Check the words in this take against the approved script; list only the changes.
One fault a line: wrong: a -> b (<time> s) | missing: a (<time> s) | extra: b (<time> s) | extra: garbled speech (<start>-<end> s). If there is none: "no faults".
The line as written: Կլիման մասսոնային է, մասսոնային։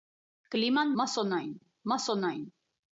no faults